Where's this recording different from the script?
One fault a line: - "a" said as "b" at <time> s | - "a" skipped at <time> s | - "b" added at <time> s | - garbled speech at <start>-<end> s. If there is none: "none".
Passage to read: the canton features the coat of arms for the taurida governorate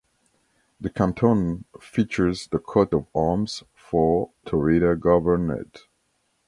- "the" skipped at 4.3 s